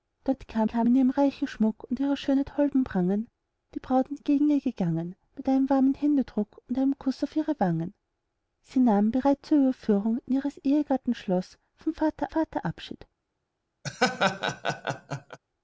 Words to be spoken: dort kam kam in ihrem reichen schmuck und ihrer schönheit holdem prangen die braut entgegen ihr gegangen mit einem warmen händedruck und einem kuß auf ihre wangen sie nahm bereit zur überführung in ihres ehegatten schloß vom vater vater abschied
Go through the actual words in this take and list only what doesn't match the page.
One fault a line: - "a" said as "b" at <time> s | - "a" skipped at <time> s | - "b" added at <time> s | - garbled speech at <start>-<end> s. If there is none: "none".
none